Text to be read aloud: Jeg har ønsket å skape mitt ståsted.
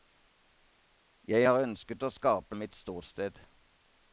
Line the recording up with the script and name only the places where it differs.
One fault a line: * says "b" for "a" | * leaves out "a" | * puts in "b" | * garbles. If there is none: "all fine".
all fine